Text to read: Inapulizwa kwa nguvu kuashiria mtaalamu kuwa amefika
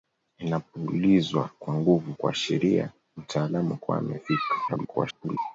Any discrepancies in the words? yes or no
yes